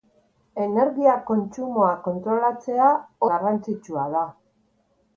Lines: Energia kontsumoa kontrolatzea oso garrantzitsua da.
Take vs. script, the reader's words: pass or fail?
fail